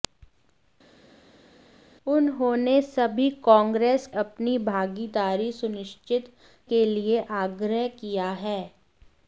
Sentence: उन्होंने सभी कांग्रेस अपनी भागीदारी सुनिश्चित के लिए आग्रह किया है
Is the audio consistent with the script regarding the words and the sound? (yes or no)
yes